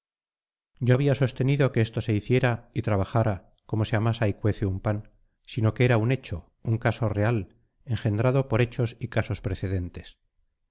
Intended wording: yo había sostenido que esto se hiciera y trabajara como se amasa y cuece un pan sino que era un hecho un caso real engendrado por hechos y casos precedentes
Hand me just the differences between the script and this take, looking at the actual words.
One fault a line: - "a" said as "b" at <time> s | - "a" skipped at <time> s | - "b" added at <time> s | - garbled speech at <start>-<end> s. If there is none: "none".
none